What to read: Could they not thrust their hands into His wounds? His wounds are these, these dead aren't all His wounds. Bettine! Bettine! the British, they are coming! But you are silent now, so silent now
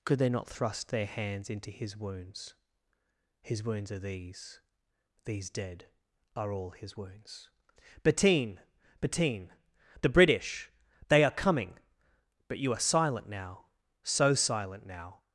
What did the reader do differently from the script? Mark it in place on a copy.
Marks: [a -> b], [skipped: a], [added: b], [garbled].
Could they not thrust their hands into His wounds? His wounds are these, these dead [aren't -> are] all His wounds. Bettine! Bettine! the British, they are coming! But you are silent now, so silent now